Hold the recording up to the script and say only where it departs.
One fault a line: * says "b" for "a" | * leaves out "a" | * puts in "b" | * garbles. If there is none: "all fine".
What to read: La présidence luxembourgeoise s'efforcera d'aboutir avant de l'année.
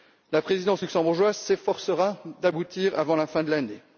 * puts in "la fin"